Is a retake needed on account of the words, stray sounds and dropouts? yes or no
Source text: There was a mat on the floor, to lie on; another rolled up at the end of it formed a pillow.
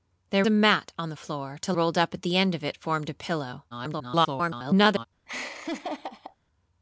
yes